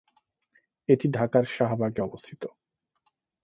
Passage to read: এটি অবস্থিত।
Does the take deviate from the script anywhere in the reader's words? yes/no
yes